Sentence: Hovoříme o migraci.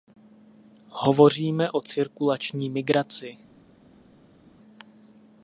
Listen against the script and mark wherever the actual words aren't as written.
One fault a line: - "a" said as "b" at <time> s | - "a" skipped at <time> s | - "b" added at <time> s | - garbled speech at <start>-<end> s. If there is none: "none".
- "cirkulační" added at 1.8 s